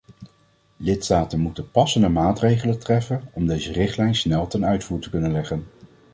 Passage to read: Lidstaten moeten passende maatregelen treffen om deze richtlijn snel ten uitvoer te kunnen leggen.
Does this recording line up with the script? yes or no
yes